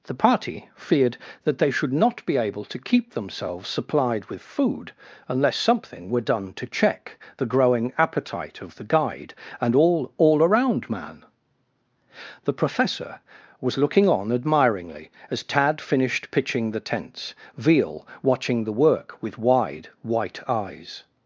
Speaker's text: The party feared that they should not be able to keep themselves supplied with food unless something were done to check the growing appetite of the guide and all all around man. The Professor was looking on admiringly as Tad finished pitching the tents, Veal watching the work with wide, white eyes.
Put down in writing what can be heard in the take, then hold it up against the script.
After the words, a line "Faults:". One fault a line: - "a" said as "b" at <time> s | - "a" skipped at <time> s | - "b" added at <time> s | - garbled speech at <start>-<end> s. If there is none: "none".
The party feared that they should not be able to keep themselves supplied with food unless something were done to check the growing appetite of the guide and all all around man. The Professor was looking on admiringly as Tad finished pitching the tents, Veal watching the work with wide, white eyes.
Faults:
none